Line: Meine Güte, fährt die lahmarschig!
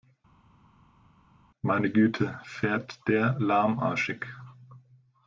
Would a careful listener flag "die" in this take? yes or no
yes